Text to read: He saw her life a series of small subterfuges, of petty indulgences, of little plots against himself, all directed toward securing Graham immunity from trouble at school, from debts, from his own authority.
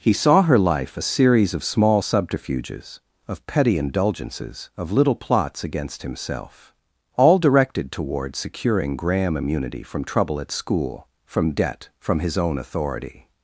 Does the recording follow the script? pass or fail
fail